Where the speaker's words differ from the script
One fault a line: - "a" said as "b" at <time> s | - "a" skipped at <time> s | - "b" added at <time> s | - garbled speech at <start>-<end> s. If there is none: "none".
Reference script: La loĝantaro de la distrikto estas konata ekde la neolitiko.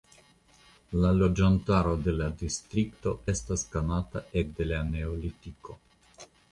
none